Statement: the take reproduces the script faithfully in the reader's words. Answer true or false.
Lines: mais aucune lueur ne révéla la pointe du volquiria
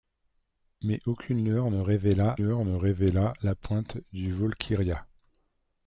false